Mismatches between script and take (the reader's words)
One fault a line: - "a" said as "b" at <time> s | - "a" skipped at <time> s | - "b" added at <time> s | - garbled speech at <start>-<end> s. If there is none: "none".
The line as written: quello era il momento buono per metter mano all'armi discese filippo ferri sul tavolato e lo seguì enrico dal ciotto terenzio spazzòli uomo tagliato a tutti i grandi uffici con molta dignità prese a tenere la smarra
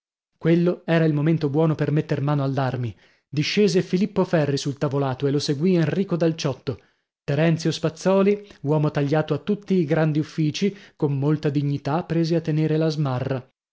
none